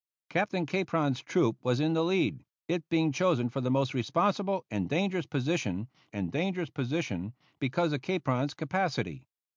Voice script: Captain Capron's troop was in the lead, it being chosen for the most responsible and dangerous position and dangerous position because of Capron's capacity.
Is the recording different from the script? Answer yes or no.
no